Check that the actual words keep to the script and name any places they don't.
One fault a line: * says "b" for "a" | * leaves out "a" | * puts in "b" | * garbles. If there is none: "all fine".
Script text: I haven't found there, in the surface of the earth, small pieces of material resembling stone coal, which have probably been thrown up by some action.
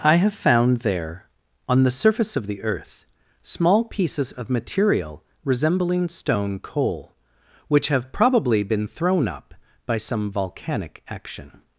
* says "have" for "haven't"
* says "on" for "in"
* puts in "volcanic"